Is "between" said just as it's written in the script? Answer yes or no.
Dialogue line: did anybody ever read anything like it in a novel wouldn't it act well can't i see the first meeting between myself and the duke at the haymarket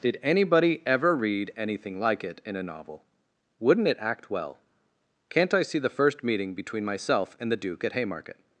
yes